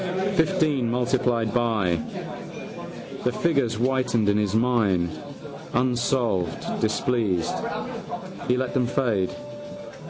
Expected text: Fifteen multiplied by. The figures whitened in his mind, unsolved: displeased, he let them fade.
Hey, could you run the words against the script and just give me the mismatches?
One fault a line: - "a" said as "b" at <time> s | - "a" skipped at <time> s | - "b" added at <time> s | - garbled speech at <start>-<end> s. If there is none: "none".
none